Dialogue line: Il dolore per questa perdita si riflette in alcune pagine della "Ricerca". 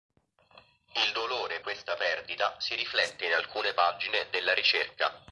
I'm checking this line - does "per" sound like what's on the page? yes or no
no